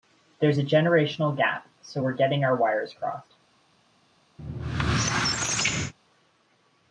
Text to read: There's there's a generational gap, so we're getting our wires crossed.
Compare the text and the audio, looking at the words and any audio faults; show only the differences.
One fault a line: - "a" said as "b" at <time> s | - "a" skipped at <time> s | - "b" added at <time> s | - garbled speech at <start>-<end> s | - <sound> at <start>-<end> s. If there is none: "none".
- "there's" skipped at 0.6 s
- squeak at 4.4-5.9 s